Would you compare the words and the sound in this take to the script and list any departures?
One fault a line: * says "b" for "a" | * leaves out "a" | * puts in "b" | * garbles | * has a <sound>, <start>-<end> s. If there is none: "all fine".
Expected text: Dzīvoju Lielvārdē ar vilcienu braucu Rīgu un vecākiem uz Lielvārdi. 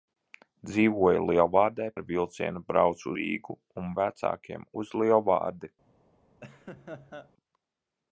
* has a laugh, 6.4-7.3 s